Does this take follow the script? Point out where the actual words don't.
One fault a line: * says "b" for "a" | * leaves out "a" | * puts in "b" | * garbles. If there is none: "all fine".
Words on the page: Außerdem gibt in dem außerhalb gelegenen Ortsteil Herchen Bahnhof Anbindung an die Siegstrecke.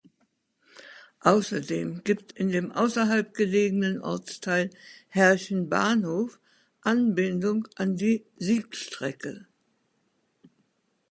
all fine